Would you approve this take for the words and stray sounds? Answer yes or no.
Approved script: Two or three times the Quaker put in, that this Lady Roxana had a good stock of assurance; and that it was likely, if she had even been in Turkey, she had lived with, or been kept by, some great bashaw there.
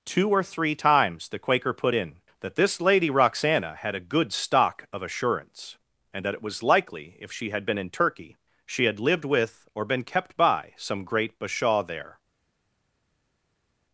no